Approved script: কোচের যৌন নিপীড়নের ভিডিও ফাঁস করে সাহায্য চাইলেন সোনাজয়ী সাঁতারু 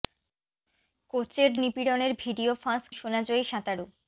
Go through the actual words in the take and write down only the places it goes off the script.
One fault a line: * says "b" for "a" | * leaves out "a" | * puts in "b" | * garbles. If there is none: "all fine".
* leaves out "যৌন"
* leaves out "করে সাহায্য চাইলেন"